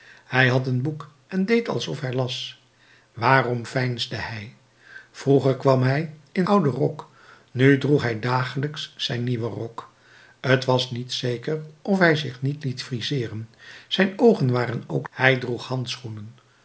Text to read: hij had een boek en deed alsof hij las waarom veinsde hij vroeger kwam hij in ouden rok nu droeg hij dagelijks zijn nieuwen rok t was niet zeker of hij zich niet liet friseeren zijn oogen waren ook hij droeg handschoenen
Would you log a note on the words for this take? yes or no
no